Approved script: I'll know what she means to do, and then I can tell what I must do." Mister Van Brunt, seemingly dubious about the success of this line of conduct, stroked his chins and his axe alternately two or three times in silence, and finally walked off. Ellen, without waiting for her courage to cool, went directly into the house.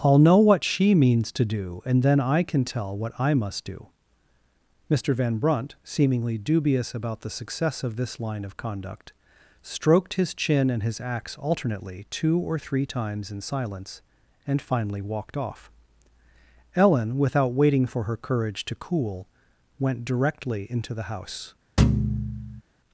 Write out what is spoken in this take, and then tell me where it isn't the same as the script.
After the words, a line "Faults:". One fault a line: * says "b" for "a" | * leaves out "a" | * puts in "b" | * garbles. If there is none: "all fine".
I'll know what she means to do, and then I can tell what I must do." Mister Van Brunt, seemingly dubious about the success of this line of conduct, stroked his chin and his axe alternately two or three times in silence, and finally walked off. Ellen, without waiting for her courage to cool, went directly into the house.
Faults:
* says "chin" for "chins"